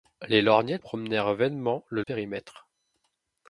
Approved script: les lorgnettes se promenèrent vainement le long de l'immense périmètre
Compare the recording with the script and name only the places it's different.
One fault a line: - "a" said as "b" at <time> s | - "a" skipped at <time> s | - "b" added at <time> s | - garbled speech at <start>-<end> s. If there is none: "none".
- "se" skipped at 0.8 s
- "long de l'immense" skipped at 2.0 s